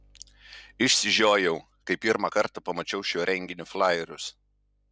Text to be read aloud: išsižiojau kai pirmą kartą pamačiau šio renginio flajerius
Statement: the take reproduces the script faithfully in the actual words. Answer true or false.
true